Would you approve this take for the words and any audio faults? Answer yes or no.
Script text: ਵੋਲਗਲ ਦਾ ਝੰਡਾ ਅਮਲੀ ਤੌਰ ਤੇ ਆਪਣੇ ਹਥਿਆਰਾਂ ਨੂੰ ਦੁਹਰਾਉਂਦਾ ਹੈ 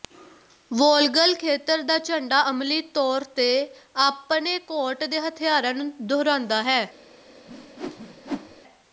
no